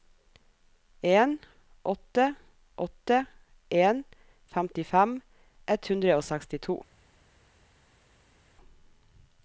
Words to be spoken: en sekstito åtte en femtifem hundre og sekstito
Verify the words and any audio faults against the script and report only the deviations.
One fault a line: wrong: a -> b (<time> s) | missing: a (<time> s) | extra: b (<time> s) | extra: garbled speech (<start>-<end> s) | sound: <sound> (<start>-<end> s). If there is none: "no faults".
wrong: sekstito -> åtte (1.8 s)
extra: ett (5.7 s)